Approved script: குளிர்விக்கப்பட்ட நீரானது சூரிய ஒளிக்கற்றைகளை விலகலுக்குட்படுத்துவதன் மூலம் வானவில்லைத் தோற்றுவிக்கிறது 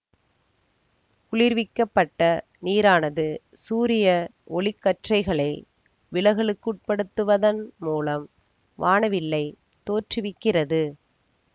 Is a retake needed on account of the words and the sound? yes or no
no